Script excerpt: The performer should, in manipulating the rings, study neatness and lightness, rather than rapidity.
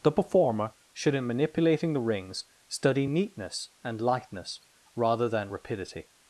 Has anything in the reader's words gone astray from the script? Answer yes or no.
no